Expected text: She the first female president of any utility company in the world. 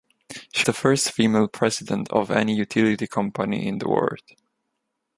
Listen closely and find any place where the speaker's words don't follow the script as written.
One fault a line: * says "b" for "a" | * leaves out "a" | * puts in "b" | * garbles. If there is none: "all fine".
all fine